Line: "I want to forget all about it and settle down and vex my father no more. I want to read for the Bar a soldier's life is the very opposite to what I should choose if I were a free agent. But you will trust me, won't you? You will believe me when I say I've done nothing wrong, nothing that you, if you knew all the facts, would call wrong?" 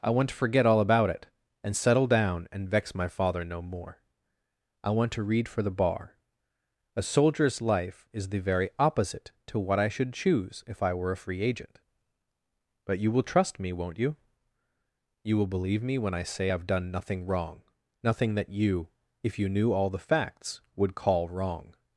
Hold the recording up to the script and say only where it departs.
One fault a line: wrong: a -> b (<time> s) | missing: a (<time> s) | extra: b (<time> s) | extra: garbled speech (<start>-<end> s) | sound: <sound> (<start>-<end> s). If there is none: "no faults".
no faults